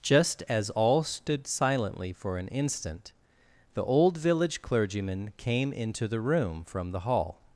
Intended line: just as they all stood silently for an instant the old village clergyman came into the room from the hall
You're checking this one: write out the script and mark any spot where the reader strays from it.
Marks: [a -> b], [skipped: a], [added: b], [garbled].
just as [skipped: they] all stood silently for an instant the old village clergyman came into the room from the hall